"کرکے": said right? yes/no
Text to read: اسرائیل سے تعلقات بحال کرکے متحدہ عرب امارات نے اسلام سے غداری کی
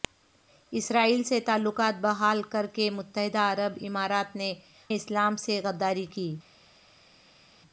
yes